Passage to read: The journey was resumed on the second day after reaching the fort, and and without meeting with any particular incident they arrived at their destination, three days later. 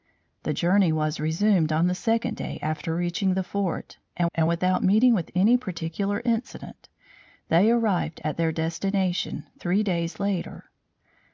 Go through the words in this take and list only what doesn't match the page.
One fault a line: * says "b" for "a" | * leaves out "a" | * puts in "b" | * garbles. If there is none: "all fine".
all fine